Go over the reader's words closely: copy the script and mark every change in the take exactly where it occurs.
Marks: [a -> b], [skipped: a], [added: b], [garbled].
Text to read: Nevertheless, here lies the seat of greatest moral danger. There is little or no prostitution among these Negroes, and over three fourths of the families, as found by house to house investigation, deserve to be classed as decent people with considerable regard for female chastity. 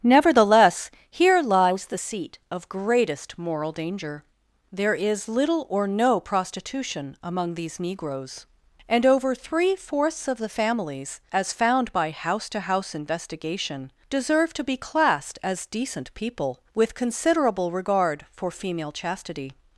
Nevertheless, here lies the seat of greatest moral danger. There is little or no prostitution among these Negroes, and over three fourths of the families, as found by house to house investigation, deserve to be classed as decent people with considerable regard for female chastity.